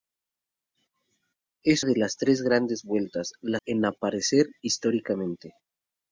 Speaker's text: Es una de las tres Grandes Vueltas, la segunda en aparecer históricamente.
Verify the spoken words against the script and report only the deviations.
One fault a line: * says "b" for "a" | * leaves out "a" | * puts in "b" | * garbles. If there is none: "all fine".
* leaves out "una"
* leaves out "segunda"